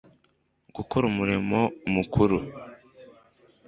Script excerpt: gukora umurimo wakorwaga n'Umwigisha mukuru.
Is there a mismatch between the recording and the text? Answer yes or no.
yes